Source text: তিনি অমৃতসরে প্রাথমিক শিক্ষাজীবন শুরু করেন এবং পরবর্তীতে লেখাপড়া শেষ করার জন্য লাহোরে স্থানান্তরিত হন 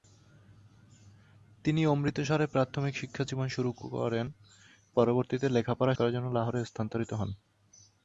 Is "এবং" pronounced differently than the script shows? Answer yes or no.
yes